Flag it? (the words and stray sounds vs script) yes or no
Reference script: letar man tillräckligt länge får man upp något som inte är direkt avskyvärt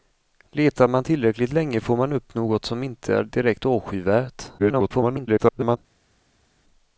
yes